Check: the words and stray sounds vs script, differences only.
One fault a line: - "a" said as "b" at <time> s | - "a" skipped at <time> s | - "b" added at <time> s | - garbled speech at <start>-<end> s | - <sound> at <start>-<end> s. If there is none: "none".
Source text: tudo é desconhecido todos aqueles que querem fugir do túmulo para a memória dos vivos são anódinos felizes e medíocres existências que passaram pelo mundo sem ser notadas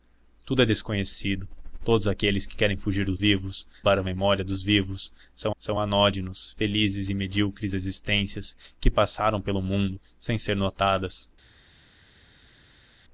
- "túmulo" said as "vivos" at 3.2 s
- "são" added at 5.6 s